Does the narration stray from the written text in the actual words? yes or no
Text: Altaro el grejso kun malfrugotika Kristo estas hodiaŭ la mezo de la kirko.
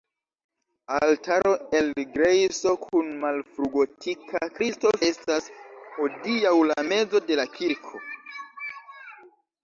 no